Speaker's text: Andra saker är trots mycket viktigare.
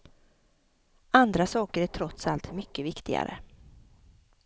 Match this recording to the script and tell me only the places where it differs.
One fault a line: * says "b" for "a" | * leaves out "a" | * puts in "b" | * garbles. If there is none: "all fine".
* puts in "allt"